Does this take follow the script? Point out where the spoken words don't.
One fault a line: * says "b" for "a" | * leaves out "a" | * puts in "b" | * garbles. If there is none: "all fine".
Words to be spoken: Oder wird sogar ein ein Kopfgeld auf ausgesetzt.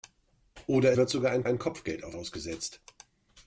all fine